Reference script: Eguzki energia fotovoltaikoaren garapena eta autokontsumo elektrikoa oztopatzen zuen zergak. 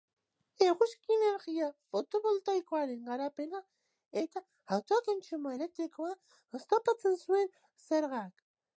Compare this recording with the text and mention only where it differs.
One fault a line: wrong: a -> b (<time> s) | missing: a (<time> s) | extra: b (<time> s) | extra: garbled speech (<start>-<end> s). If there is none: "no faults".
no faults